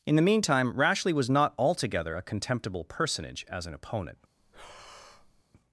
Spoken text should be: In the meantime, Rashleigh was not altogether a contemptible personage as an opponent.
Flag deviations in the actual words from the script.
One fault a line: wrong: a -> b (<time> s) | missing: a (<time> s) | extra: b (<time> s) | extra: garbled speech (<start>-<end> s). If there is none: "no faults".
no faults